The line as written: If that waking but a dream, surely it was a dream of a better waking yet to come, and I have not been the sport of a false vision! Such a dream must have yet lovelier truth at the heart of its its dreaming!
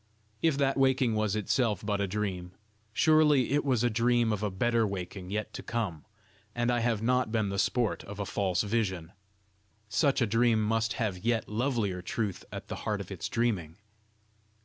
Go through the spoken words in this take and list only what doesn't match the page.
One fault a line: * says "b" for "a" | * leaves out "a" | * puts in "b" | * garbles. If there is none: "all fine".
* puts in "was itself"
* leaves out "its"